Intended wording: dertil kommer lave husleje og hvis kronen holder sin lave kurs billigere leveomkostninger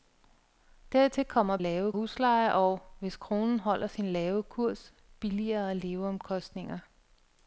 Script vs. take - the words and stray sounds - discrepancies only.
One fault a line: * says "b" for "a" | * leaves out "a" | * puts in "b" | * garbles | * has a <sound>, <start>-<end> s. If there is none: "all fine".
all fine